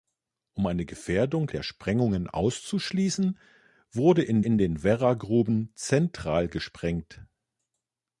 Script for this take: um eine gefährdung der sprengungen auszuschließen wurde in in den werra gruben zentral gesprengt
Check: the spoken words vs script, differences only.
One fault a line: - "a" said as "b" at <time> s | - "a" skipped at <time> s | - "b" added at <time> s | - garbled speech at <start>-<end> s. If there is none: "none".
none